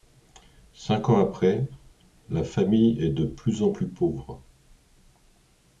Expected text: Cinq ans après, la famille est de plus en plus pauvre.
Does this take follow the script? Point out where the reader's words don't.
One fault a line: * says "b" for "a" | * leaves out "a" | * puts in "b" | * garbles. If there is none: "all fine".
all fine